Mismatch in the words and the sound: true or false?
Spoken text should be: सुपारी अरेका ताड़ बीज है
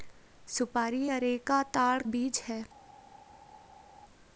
false